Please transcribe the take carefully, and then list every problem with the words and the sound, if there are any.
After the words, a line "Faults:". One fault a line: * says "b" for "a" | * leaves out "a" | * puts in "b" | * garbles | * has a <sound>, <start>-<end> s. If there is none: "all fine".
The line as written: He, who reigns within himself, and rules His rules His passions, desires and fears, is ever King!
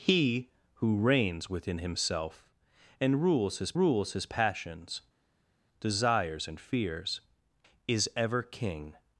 He, who reigns within himself, and rules His rules His passions, desires and fears, is ever King!
Faults:
all fine